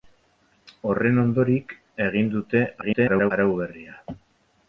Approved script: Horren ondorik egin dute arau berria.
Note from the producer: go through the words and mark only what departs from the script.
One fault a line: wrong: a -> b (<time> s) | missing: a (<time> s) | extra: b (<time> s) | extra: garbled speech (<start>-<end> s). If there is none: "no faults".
extra: garbled speech (2.8-3.3 s)